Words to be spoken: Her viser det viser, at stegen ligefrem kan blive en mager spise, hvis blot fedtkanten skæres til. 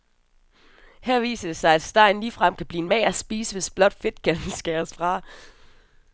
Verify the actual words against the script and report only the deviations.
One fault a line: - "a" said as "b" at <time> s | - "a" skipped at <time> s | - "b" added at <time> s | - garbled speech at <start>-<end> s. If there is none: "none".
- "viser" said as "sig" at 1.6 s
- "til" said as "fra" at 4.9 s